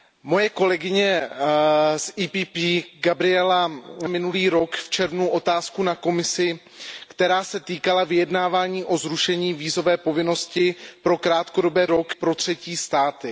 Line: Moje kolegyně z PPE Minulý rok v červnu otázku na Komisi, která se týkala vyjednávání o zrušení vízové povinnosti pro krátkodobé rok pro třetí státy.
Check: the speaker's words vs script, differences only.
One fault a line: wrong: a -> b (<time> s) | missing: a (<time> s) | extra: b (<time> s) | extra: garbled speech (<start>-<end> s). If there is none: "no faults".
no faults